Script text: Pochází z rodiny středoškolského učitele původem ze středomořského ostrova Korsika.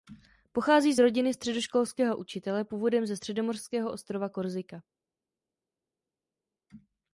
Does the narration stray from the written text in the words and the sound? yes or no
no